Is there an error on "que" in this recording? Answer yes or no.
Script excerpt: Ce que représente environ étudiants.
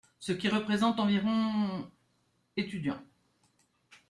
yes